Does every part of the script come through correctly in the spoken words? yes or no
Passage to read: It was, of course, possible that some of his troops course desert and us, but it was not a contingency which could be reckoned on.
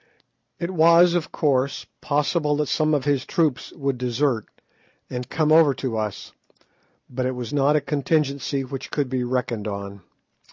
no